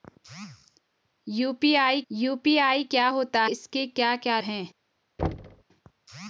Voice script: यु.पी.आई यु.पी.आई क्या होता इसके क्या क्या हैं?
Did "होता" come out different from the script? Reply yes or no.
no